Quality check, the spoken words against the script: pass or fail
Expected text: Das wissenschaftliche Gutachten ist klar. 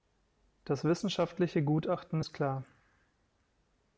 pass